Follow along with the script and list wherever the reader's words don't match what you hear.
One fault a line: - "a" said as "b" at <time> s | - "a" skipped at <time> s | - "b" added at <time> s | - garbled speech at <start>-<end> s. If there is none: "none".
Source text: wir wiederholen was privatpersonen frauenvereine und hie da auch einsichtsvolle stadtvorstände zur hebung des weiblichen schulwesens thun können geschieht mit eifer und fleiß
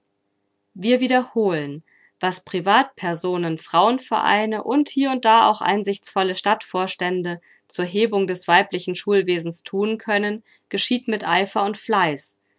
- "und" added at 5.1 s